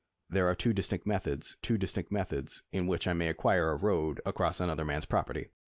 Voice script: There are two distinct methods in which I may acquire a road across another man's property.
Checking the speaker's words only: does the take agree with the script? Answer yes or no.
no